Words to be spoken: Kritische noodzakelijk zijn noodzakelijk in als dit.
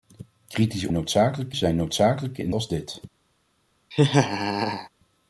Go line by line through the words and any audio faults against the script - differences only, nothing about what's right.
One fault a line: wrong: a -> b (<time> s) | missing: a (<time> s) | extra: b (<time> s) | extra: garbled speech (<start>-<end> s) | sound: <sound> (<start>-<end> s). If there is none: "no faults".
sound: laugh (3.9-4.9 s)